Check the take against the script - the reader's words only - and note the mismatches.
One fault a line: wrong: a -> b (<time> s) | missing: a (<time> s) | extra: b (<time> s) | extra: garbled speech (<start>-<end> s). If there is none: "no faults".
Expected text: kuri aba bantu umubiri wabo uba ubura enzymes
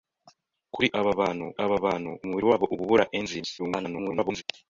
extra: aba bantu (1.6 s)
extra: garbled speech (3.6-4.4 s)